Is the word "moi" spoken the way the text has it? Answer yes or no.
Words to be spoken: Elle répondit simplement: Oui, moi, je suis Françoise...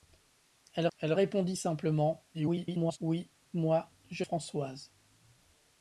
yes